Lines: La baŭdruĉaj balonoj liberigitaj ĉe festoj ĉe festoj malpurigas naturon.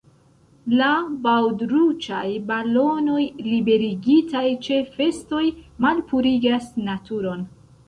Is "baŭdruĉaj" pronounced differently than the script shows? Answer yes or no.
no